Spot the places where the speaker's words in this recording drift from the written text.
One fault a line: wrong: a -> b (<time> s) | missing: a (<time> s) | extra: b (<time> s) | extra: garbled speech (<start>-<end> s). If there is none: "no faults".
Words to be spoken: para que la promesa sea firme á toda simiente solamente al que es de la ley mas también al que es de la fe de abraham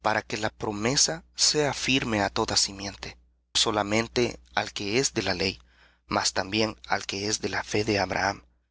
no faults